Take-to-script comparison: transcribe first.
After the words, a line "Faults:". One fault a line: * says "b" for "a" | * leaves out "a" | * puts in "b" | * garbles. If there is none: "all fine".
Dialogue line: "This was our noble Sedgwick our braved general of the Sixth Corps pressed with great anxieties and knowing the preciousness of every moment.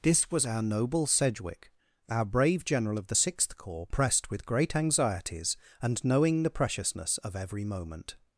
"This was our noble Sedgwick our brave general of the Sixth Corps pressed with great anxieties and knowing the preciousness of every moment.
Faults:
* says "brave" for "braved"